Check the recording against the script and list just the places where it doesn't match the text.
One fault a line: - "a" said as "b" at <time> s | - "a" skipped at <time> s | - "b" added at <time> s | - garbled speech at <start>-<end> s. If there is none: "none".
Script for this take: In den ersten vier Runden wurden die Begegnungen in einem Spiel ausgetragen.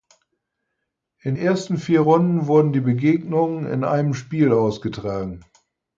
- "den" skipped at 1.4 s